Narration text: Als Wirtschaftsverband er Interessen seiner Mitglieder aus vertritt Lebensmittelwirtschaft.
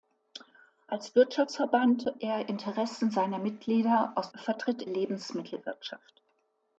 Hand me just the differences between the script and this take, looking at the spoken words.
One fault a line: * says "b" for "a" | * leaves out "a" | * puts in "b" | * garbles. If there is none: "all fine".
all fine